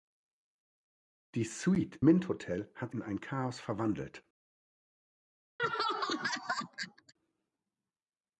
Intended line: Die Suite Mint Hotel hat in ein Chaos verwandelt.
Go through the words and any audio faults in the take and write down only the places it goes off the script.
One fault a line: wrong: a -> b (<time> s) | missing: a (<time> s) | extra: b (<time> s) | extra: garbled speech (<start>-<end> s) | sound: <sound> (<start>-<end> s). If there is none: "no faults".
sound: laugh (5.6-7.1 s)